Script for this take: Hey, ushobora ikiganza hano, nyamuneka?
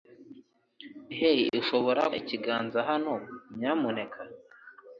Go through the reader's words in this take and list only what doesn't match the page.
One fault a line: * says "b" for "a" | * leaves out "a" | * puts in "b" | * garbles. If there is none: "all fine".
all fine